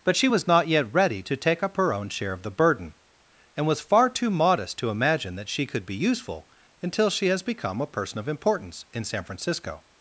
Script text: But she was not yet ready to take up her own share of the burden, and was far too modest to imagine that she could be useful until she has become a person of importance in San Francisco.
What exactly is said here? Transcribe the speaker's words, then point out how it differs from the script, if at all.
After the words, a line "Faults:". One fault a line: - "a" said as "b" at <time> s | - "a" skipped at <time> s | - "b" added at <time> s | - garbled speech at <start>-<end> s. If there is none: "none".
But she was not yet ready to take up her own share of the burden, and was far too modest to imagine that she could be useful until she has become a person of importance in San Francisco.
Faults:
none